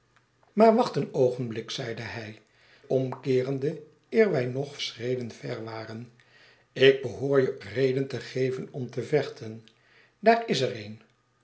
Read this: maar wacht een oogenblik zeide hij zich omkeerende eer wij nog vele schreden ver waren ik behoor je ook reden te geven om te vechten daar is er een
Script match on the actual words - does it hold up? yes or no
no